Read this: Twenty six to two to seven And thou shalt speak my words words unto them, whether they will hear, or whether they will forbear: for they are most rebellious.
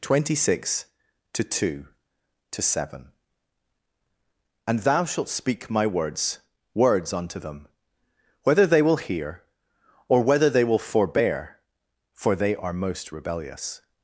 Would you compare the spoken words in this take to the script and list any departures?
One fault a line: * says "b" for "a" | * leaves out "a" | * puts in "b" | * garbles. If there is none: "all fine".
all fine